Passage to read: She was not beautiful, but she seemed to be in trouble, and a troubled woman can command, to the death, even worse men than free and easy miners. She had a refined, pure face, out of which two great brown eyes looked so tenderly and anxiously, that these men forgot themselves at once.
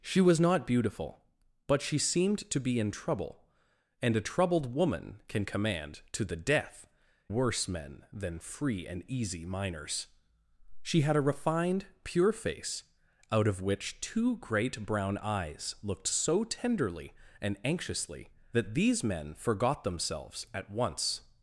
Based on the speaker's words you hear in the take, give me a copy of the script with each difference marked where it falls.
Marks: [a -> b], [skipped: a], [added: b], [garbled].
She was not beautiful, but she seemed to be in trouble, and a troubled woman can command, to the death, [skipped: even] worse men than free and easy miners. She had a refined, pure face, out of which two great brown eyes looked so tenderly and anxiously, that these men forgot themselves at once.